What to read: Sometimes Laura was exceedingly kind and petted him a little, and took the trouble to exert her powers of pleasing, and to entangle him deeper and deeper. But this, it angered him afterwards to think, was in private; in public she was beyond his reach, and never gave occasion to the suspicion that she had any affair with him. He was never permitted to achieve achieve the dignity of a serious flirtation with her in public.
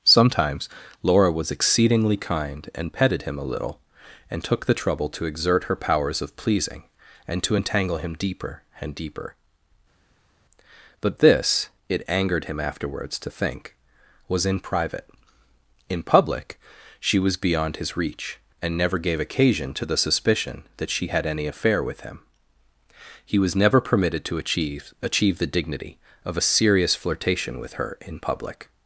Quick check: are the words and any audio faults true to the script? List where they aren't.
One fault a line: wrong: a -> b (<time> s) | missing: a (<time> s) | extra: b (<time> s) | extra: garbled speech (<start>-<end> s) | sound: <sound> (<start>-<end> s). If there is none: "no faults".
no faults